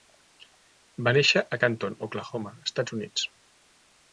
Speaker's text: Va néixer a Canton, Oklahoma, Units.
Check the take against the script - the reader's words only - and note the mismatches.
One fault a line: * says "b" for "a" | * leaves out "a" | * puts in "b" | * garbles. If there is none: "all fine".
* puts in "Estats"